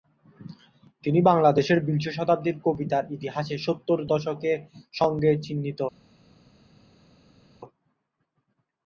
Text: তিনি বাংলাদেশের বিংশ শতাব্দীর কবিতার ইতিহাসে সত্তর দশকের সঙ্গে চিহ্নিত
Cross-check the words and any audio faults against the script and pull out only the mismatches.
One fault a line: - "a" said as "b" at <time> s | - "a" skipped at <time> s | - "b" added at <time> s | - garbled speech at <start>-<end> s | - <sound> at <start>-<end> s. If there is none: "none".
none